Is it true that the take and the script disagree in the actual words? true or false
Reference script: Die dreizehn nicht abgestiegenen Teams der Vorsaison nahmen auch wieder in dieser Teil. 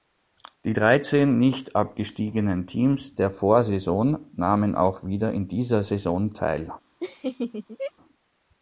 true